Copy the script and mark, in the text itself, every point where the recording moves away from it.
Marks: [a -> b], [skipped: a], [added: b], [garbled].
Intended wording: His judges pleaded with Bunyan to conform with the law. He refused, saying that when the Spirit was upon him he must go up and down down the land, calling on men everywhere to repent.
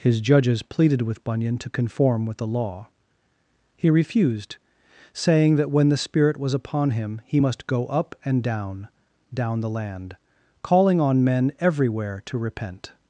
His judges pleaded with Bunyan to conform with the law. He refused, saying that when the Spirit was upon him he must go up and down down the land, calling on men everywhere to repent.